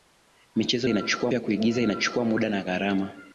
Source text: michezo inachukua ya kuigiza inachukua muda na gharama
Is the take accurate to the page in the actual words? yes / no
yes